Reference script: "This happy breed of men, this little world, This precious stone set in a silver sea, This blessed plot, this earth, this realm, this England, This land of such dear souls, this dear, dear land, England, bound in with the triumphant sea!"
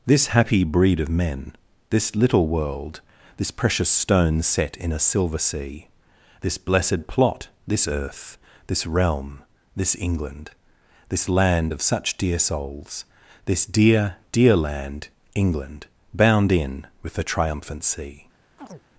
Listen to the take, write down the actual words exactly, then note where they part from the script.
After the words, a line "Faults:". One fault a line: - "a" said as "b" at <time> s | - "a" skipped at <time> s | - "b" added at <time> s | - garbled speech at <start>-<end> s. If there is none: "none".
"This happy breed of men, this little world, This precious stone set in a silver sea, This blessed plot, this earth, this realm, this England, This land of such dear souls, this dear, dear land, England, bound in with the triumphant sea!"
Faults:
none